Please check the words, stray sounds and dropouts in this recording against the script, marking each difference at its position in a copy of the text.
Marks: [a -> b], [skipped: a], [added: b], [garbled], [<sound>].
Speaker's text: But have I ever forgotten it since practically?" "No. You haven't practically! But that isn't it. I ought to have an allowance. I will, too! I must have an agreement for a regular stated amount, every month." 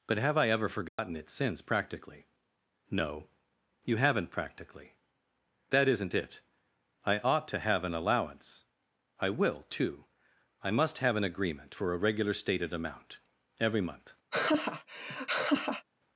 But have I ever forgotten [dropout] it since practically?" "No. You haven't practically! [skipped: But] that isn't it. I ought to have an allowance. I will, too! I must have an agreement for a regular stated amount, every month." [laugh]